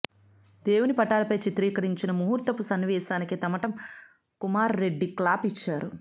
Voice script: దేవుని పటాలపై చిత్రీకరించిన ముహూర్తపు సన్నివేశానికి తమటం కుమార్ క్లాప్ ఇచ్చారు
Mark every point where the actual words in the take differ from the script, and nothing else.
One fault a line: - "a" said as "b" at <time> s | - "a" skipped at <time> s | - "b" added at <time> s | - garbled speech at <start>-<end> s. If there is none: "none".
- "రెడ్డి" added at 4.8 s